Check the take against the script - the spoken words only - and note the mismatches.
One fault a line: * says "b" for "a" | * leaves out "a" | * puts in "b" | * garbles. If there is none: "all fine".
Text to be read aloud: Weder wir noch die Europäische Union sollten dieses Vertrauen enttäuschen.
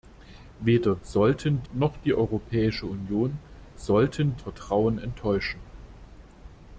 * says "sollten" for "wir"
* leaves out "dieses"